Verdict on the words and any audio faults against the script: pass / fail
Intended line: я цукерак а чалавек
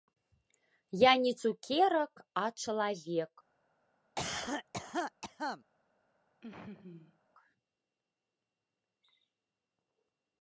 fail